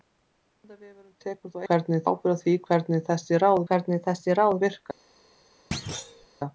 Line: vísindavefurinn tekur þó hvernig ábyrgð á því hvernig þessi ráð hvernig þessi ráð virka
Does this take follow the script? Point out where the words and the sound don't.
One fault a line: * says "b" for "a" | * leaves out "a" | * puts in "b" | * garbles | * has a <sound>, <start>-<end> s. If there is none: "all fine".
* has a thud, 5.7-6.3 s